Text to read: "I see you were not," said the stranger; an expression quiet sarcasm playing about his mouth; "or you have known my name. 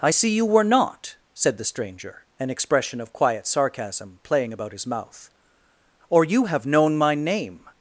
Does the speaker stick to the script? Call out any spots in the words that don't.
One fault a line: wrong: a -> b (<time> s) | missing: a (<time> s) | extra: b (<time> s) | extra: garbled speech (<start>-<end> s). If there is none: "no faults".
extra: of (3.0 s)